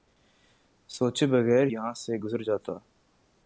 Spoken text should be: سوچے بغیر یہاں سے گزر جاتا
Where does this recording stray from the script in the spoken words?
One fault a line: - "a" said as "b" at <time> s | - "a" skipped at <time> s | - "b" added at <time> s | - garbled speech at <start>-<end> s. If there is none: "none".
none